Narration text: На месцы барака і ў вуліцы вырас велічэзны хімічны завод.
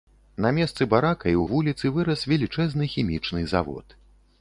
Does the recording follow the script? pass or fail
pass